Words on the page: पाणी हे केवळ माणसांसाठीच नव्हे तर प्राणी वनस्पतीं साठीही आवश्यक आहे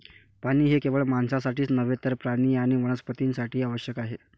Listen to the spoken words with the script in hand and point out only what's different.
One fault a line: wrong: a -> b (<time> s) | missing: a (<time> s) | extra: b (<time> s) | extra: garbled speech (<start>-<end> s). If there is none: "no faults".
extra: आणि (2.6 s)